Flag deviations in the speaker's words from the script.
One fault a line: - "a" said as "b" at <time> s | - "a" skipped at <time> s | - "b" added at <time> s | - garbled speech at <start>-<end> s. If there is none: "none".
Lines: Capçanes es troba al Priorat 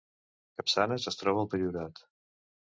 none